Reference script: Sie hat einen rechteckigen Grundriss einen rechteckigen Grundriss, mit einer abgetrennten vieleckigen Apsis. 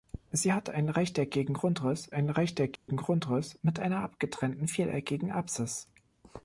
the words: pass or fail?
pass